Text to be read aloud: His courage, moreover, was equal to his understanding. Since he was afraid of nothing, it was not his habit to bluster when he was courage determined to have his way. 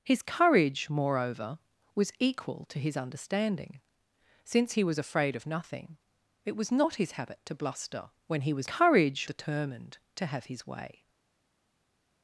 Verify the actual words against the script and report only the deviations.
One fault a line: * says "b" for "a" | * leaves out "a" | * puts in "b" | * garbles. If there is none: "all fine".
all fine